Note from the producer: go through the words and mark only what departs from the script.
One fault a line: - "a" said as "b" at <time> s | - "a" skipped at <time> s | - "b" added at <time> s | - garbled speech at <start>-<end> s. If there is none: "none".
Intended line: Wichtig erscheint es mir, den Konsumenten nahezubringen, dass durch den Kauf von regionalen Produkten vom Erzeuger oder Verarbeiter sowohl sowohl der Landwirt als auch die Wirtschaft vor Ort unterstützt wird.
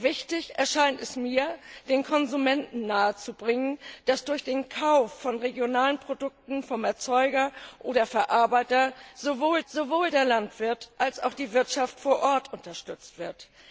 none